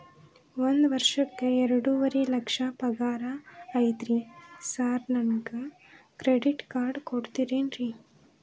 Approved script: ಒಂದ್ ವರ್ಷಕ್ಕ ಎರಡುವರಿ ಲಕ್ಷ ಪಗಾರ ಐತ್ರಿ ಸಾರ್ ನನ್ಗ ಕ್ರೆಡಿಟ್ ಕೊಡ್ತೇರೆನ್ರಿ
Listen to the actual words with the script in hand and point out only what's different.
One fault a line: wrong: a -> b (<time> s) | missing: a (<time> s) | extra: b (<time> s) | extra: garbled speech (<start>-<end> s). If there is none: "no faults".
extra: ಕಾರ್ಡ್ (6.7 s)